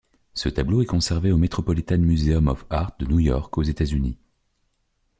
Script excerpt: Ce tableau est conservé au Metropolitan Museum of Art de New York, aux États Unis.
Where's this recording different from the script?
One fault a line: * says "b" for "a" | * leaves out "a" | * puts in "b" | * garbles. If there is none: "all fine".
all fine